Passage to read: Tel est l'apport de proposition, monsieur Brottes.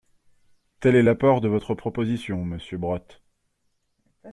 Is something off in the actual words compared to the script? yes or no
yes